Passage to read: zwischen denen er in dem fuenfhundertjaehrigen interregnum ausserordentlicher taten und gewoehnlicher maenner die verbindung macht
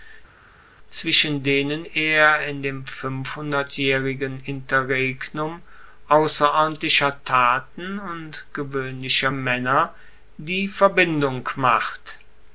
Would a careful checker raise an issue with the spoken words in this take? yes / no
no